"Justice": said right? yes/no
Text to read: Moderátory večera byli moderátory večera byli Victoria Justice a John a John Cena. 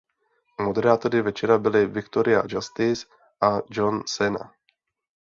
yes